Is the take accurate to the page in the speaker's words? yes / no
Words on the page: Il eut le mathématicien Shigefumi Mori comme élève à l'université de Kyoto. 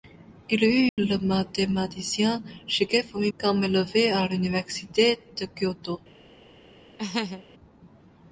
no